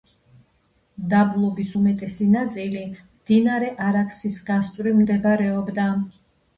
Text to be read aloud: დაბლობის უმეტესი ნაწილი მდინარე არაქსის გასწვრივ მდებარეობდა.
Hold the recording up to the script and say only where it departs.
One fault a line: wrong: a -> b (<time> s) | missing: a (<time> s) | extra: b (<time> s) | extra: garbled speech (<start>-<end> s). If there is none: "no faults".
no faults